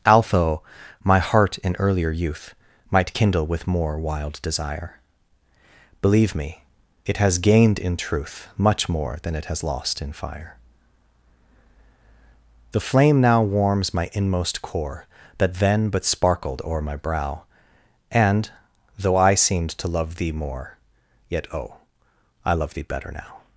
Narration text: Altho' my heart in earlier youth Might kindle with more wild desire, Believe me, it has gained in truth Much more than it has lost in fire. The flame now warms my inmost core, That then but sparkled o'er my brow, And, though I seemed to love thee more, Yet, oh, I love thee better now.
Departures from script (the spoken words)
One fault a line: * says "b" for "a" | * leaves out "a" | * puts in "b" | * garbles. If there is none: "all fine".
all fine